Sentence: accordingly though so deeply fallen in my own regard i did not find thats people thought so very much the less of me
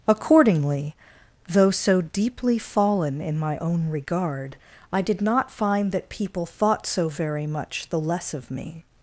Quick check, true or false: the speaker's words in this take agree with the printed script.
false